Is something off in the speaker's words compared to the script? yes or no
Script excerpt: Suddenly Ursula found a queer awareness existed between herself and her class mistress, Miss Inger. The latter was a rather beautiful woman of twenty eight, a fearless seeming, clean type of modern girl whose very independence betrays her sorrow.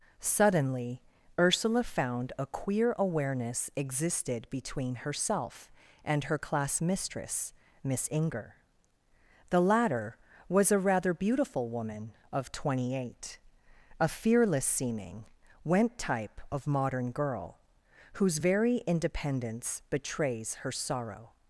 yes